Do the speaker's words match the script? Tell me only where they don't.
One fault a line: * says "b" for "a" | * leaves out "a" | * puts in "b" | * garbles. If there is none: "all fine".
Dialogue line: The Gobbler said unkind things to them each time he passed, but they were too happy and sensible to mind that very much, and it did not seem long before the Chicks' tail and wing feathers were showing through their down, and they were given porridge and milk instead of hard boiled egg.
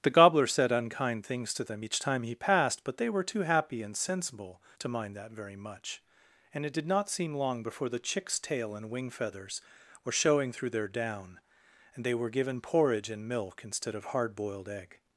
all fine